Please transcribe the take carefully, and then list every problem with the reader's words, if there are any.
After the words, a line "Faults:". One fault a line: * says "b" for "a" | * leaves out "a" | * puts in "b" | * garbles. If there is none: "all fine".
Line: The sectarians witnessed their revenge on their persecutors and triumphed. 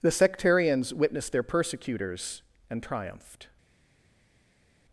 The sectarians witnessed their persecutors and triumphed.
Faults:
* leaves out "revenge on their"